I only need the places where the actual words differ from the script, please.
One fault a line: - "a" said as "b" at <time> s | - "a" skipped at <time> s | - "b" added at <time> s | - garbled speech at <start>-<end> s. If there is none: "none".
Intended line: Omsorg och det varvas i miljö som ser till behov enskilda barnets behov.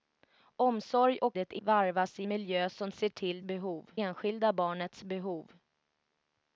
none